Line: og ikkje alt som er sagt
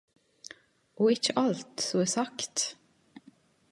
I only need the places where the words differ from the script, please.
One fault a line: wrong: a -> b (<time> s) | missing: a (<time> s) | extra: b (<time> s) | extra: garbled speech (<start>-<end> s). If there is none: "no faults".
no faults